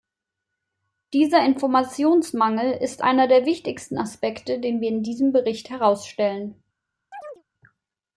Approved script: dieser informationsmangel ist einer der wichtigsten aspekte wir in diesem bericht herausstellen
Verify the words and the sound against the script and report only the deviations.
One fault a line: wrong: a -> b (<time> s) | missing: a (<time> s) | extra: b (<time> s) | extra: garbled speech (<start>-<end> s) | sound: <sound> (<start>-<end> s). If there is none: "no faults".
extra: den (4.6 s)
sound: chirp (7.1-7.4 s)